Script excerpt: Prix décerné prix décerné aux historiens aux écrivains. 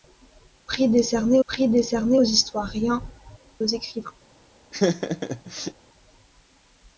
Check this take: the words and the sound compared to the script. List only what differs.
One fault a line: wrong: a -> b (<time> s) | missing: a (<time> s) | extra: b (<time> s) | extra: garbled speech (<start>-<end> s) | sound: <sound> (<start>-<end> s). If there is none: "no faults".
sound: laugh (4.7-5.7 s)